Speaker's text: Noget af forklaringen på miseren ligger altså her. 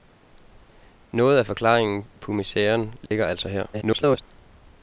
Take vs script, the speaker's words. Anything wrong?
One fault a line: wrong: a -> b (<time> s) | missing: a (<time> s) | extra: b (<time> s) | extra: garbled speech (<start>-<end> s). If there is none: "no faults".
extra: garbled speech (3.7-4.2 s)